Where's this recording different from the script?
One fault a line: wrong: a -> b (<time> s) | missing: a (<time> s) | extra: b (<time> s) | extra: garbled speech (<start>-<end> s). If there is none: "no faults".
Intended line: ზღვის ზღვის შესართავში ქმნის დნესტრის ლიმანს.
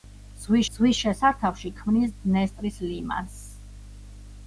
no faults